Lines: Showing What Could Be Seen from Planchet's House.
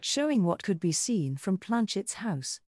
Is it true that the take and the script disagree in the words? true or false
false